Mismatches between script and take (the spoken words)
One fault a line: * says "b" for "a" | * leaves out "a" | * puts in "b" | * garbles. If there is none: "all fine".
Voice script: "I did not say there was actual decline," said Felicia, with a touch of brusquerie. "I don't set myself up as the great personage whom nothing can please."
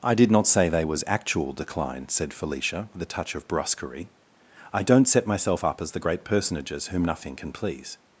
* says "they" for "there"
* says "personages" for "personage"